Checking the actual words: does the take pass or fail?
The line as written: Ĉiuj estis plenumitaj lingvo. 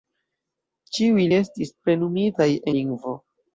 pass